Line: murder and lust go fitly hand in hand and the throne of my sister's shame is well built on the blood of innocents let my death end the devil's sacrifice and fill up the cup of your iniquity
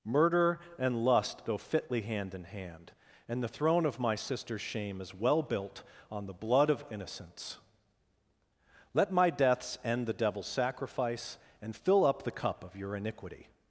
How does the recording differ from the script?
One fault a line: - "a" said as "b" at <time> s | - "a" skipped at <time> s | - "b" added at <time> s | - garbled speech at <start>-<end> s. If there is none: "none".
- "death" said as "deaths" at 9.3 s